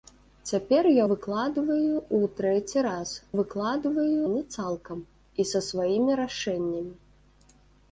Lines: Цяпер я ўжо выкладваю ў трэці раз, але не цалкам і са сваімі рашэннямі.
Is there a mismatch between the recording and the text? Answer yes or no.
yes